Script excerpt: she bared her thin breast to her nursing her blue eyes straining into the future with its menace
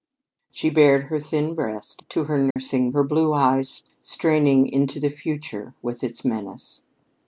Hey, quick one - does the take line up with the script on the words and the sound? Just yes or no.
no